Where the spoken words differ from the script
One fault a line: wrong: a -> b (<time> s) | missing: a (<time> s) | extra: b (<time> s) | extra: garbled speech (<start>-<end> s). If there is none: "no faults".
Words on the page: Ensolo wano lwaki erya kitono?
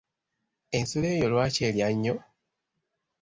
wrong: wano -> eyo (1.1 s)
wrong: kitono -> nnyo (1.9 s)